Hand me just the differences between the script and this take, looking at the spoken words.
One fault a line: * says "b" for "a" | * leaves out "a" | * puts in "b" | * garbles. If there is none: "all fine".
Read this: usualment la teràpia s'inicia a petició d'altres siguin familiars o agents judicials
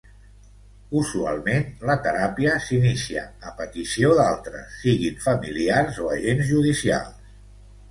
all fine